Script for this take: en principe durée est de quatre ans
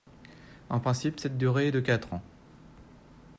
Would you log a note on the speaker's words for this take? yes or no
yes